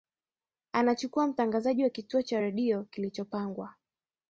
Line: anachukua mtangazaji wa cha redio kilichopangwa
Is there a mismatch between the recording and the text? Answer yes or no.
yes